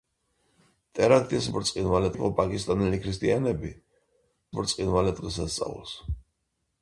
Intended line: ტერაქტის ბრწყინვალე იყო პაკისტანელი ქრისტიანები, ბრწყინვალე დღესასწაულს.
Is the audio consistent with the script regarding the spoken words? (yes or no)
yes